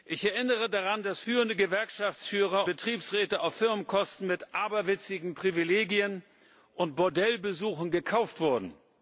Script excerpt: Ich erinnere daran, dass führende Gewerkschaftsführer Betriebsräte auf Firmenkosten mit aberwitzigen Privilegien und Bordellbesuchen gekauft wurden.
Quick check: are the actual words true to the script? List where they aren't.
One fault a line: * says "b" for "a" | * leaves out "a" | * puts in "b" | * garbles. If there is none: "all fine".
all fine